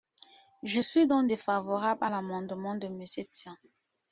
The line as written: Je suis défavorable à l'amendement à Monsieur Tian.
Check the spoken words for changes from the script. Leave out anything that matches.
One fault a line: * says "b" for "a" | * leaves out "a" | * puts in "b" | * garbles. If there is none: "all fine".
* puts in "donc"
* says "de" for "à"